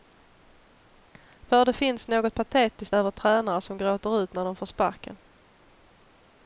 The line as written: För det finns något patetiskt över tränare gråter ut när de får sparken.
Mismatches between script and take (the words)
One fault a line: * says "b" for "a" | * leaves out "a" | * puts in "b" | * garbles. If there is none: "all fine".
* puts in "som"